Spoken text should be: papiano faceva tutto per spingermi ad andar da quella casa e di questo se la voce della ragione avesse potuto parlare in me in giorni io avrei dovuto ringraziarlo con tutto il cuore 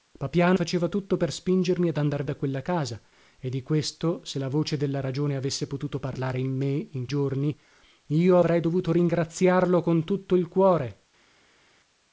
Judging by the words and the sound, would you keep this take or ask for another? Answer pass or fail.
pass